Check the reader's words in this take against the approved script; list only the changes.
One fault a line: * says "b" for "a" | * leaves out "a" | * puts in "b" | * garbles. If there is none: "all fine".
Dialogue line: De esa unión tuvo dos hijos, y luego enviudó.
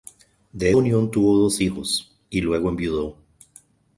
* leaves out "esa"